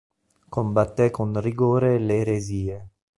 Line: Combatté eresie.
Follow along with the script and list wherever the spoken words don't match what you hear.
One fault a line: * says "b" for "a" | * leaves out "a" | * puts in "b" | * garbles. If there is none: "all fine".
* puts in "con rigore le"